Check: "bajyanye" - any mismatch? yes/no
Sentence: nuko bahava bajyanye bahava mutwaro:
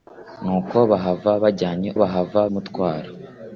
no